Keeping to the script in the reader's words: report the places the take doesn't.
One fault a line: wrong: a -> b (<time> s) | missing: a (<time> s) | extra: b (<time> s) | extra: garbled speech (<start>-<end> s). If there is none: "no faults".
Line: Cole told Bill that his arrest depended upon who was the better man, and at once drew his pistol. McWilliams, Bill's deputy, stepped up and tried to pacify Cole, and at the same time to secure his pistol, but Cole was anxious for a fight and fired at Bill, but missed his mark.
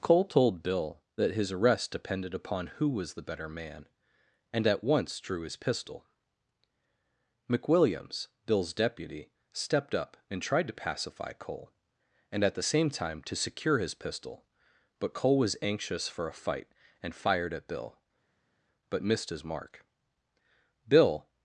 extra: Bill (20.9 s)